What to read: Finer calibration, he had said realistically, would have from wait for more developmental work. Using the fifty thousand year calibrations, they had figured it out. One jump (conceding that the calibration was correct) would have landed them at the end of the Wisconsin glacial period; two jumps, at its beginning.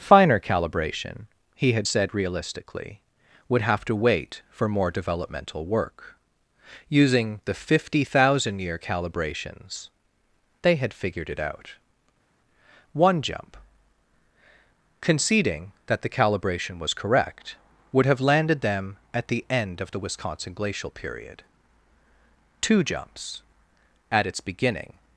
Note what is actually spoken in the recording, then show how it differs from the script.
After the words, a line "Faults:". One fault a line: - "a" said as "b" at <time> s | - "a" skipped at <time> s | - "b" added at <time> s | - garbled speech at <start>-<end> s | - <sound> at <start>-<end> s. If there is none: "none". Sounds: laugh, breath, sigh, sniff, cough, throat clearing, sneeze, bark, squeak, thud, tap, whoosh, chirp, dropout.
Finer calibration, he had said realistically, would have to wait for more developmental work. Using the fifty thousand year calibrations, they had figured it out. One jump (conceding that the calibration was correct) would have landed them at the end of the Wisconsin glacial period; two jumps, at its beginning.
Faults:
- "from" said as "to" at 3.8 s